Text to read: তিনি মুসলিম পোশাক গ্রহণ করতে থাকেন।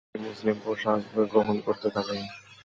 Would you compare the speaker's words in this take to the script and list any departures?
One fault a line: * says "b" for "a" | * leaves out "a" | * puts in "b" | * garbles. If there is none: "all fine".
all fine